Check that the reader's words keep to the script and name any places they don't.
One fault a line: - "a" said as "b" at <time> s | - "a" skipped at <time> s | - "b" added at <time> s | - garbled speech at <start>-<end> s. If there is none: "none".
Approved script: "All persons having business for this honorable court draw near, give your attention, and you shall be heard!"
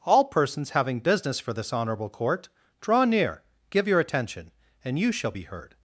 none